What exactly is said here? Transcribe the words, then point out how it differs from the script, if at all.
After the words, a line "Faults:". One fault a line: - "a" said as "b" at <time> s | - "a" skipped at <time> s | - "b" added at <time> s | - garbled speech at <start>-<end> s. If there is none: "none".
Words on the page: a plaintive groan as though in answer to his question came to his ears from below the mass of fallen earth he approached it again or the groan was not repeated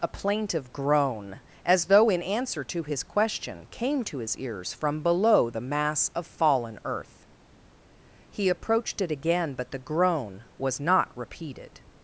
a plaintive groan as though in answer to his question came to his ears from below the mass of fallen earth he approached it again but the groan was not repeated
Faults:
- "or" said as "but" at 9.5 s